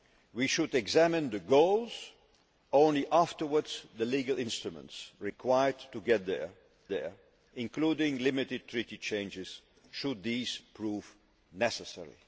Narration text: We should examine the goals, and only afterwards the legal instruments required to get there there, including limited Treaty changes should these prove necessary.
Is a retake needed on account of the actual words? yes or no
no